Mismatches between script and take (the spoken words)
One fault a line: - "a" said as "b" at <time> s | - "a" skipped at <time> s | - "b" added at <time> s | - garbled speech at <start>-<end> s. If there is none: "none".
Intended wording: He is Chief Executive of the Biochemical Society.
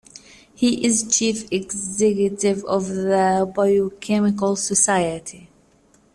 none